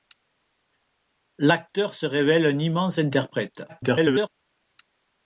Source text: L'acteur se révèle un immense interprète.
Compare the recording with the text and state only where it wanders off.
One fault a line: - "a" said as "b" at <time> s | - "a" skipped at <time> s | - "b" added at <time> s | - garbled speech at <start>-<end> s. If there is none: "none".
- garbled speech at 3.7-4.3 s